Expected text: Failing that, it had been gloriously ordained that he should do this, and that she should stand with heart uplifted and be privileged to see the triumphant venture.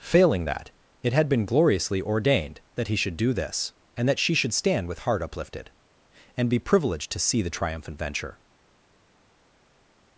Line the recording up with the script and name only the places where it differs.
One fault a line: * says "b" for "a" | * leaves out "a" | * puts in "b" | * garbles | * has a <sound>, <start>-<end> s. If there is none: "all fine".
all fine